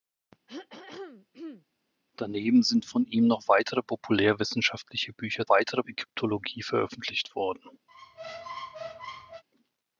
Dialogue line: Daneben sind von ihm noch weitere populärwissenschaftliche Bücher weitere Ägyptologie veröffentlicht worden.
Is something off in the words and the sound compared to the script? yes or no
yes